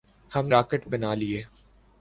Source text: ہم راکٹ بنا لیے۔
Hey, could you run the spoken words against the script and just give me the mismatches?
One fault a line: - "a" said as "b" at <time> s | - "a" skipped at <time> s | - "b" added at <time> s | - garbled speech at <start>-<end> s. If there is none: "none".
none